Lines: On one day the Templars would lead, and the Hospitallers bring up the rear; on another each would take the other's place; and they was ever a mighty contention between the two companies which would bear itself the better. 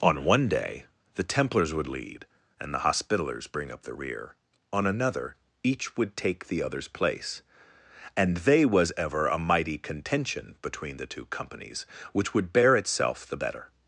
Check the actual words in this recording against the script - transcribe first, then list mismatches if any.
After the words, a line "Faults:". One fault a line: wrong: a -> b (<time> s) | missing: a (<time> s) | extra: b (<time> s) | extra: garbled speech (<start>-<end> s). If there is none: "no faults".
On one day the Templars would lead, and the Hospitallers bring up the rear; on another each would take the other's place; and they was ever a mighty contention between the two companies which would bear itself the better.
Faults:
no faults